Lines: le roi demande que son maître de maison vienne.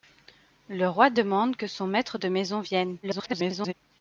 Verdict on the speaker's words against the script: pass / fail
fail